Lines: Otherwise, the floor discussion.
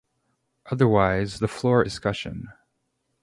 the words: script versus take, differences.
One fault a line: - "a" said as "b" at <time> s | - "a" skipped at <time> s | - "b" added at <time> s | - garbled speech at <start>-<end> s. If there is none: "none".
none